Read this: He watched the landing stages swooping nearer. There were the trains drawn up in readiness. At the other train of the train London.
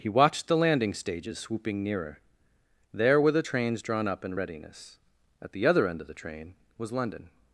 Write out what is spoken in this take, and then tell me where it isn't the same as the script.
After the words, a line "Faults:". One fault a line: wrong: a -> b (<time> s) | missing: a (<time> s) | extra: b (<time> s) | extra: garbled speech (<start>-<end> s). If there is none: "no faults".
He watched the landing stages swooping nearer. There were the trains drawn up in readiness. At the other end of the train was London.
Faults:
wrong: train -> end (5.9 s)
extra: was (6.8 s)